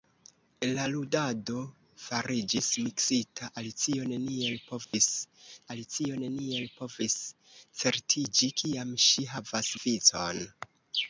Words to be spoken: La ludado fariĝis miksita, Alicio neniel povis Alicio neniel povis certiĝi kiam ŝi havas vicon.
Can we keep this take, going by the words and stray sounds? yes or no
no